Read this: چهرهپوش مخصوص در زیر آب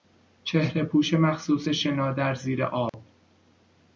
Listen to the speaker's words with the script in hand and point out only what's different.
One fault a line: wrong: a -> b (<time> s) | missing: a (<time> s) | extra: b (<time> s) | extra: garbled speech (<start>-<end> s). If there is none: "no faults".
extra: شنا (1.7 s)